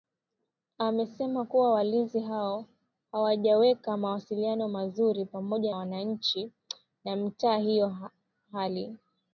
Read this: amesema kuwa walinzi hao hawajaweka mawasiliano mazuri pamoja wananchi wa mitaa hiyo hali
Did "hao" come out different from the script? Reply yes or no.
no